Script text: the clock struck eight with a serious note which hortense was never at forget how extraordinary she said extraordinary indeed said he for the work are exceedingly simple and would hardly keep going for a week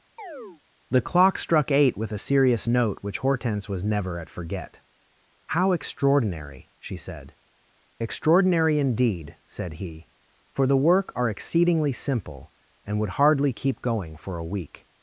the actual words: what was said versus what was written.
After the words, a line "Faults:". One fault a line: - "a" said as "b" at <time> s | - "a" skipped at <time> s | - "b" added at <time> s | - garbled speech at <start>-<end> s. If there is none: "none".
the clock struck eight with a serious note which hortense was never at forget how extraordinary she said extraordinary indeed said he for the work are exceedingly simple and would hardly keep going for a week
Faults:
none